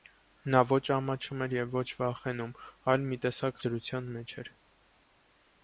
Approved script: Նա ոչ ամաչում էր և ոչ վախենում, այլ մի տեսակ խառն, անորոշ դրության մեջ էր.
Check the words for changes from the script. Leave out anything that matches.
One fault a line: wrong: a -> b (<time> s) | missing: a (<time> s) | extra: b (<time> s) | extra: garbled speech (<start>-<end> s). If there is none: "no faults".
missing: խառն անորոշ (3.6 s)